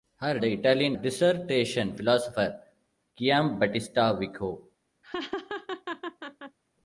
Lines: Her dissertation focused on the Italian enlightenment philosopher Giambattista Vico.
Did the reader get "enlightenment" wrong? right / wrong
wrong